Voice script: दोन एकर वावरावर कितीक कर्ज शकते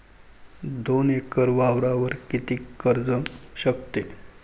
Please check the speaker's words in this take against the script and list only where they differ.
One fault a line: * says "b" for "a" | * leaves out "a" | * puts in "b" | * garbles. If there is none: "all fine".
all fine